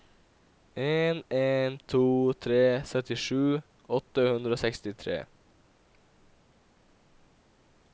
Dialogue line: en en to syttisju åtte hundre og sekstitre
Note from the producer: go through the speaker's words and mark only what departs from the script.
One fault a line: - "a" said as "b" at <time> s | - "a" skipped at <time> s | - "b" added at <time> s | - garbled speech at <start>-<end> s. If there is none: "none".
- "tre" added at 2.5 s